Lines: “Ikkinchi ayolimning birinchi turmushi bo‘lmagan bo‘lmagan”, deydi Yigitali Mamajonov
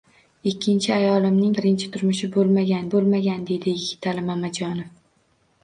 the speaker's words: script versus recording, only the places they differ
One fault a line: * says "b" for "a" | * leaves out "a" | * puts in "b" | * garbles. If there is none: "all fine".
all fine